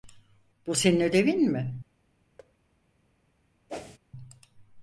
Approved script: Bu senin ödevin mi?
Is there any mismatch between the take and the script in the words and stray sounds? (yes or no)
yes